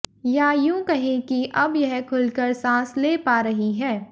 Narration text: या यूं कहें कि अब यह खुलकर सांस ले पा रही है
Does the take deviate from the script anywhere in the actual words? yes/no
no